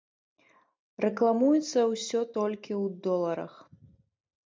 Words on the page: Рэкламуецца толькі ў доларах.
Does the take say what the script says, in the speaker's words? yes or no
no